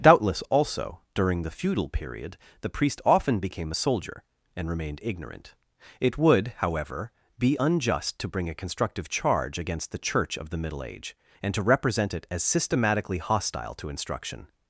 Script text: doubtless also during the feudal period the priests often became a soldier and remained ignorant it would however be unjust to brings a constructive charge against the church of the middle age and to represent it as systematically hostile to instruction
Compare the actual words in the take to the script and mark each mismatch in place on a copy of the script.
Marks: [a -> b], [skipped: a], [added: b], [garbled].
doubtless also during the feudal period the [priests -> priest] often became a soldier and remained ignorant it would however be unjust to [brings -> bring] a constructive charge against the church of the middle age and to represent it as systematically hostile to instruction